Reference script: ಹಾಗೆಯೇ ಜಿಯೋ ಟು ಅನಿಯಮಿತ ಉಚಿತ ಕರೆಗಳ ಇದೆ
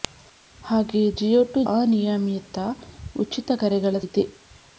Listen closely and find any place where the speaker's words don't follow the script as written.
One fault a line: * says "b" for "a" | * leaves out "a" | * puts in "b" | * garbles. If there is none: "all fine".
all fine